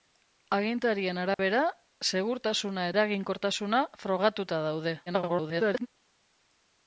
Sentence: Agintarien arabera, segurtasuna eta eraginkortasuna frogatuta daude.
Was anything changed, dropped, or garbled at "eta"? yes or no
yes